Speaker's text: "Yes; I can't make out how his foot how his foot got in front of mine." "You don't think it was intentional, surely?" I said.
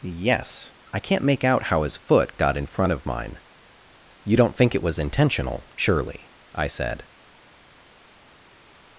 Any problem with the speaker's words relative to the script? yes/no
yes